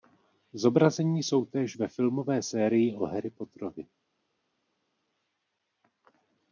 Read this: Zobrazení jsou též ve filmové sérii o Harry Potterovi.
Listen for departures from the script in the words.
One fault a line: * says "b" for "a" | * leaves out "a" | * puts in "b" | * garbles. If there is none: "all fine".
all fine